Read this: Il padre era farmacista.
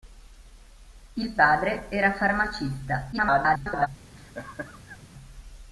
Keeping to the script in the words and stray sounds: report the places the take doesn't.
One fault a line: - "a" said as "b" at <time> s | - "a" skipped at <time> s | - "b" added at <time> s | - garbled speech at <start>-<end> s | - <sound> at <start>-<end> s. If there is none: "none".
- garbled speech at 3.1-3.9 s
- laugh at 4.2-5.0 s